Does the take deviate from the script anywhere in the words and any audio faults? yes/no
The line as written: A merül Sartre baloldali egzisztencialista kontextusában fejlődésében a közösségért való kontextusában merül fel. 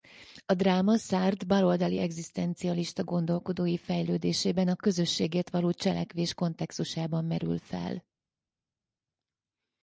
yes